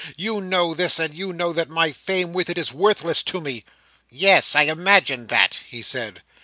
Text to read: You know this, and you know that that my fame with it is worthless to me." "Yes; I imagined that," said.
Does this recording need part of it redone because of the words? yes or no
yes